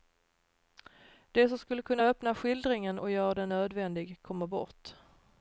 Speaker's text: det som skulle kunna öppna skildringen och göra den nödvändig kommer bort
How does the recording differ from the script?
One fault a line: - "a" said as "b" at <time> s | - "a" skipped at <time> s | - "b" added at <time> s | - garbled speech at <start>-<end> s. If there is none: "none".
none